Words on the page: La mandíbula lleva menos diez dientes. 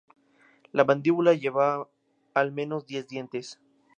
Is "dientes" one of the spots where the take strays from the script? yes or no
no